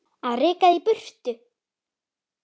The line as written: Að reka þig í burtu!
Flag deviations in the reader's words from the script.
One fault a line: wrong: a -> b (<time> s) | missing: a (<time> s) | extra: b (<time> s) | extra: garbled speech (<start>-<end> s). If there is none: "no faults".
no faults